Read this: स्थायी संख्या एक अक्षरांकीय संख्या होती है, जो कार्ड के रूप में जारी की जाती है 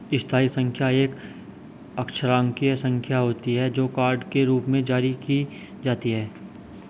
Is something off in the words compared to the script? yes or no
no